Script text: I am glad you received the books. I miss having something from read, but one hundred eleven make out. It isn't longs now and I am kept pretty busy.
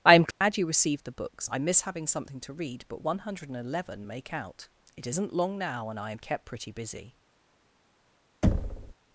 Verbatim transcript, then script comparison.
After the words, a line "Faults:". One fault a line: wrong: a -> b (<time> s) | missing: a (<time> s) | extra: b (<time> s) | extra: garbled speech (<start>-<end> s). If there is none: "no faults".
I am glad you received the books. I miss having something to read, but one hundred eleven make out. It isn't long now and I am kept pretty busy.
Faults:
wrong: from -> to (2.4 s)
wrong: longs -> long (5.3 s)